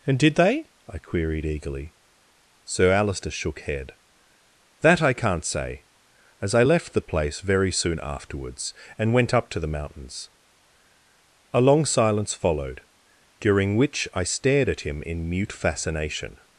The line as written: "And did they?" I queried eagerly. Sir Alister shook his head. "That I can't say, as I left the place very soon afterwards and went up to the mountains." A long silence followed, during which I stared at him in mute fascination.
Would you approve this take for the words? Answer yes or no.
no